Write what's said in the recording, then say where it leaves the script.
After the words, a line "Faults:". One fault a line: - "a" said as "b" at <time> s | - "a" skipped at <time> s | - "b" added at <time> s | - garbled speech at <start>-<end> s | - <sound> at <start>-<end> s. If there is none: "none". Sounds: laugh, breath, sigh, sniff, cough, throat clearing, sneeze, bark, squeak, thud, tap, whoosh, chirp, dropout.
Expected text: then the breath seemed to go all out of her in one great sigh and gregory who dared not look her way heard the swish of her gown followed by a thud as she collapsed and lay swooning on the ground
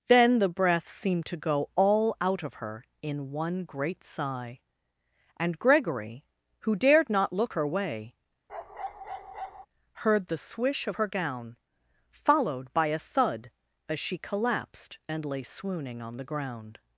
then the breath seemed to go all out of her in one great sigh and gregory who dared not look her way heard the swish of her gown followed by a thud as she collapsed and lay swooning on the ground
Faults:
- bark at 8.5-9.7 s